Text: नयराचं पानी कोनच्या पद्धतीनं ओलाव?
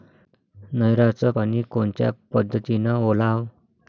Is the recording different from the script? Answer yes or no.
no